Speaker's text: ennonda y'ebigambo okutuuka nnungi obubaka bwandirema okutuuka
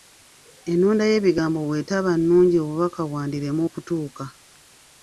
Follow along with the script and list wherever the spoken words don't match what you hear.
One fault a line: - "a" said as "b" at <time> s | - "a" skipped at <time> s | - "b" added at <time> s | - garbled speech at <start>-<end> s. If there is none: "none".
- "okutuuka" said as "bw'etaba" at 1.7 s